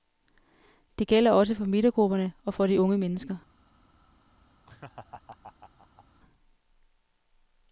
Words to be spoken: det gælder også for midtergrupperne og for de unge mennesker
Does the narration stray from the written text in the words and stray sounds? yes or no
yes